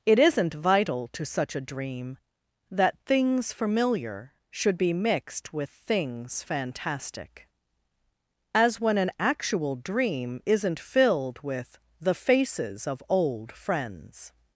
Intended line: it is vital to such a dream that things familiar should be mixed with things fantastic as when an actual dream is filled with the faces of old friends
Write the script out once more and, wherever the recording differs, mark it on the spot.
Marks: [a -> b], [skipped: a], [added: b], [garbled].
it [is -> isn't] vital to such a dream that things familiar should be mixed with things fantastic as when an actual dream [is -> isn't] filled with the faces of old friends